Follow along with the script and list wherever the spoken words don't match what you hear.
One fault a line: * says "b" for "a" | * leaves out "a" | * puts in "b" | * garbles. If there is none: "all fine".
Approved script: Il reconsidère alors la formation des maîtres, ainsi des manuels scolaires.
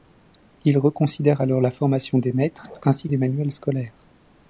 all fine